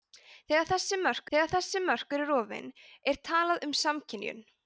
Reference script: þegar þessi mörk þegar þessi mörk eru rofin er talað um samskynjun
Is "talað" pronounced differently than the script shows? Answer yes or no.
no